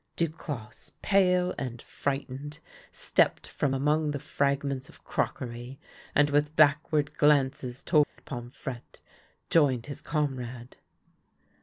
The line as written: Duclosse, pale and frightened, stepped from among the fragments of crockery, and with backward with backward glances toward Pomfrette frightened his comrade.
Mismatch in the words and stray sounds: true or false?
true